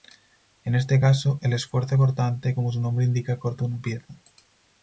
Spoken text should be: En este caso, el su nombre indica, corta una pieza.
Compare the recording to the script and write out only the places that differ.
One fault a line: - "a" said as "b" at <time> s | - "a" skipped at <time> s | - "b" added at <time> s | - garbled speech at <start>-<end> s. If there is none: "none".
- "esfuerzo cortante como" added at 1.5 s